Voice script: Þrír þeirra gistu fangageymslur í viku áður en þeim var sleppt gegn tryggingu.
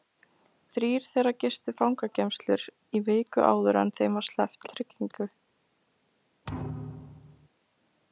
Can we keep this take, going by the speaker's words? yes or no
no